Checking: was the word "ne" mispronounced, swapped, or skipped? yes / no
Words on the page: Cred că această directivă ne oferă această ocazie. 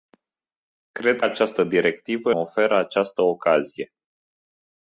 yes